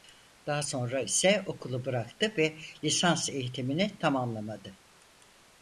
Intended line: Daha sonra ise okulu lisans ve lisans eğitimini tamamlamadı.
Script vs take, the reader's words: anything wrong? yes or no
yes